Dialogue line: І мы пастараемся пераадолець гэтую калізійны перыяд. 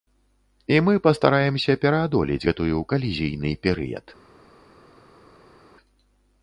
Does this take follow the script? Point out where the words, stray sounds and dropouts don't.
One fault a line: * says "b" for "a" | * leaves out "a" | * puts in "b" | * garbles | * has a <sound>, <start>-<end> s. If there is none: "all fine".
all fine